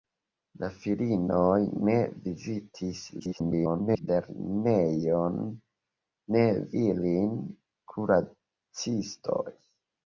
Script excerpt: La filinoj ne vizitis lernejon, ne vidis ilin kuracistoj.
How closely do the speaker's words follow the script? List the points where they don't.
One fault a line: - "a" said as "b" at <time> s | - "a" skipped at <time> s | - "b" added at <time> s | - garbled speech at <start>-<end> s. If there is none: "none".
- garbled speech at 3.2-4.1 s
- "vidis" skipped at 6.5 s